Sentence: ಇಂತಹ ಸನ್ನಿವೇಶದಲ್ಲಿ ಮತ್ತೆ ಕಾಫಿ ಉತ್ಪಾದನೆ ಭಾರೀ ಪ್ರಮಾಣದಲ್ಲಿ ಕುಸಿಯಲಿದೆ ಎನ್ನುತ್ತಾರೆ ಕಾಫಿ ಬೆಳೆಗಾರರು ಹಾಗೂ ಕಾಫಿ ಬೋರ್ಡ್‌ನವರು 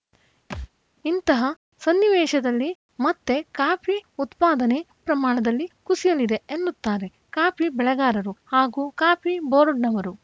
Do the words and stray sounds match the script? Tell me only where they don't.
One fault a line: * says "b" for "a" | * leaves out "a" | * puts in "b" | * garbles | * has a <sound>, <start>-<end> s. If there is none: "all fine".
* has a thud, 0.5-0.7 s
* leaves out "ಭಾರೀ"